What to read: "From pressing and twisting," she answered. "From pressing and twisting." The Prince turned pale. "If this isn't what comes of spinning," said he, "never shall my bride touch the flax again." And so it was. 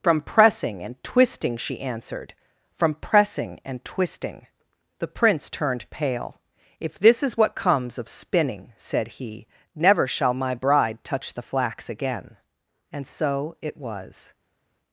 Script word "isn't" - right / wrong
wrong